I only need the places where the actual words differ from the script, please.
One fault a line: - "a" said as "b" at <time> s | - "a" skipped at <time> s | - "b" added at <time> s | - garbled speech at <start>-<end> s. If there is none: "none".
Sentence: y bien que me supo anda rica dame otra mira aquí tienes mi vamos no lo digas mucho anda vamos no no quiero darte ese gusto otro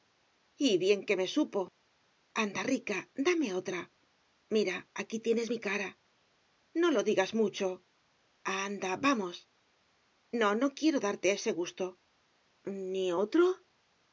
- "vamos" said as "cara" at 5.7 s
- "ni" added at 12.9 s